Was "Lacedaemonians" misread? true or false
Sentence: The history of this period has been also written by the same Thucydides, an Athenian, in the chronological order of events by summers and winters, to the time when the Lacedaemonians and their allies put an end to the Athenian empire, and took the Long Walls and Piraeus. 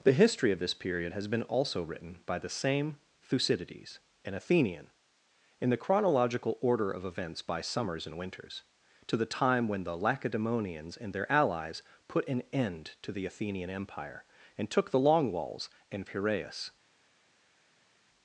false